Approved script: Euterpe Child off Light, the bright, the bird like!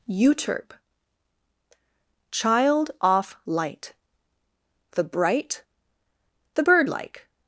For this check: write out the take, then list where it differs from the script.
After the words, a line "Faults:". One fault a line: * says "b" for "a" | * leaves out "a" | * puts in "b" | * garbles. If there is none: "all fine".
Euterpe Child off Light, the bright, the bird like!
Faults:
all fine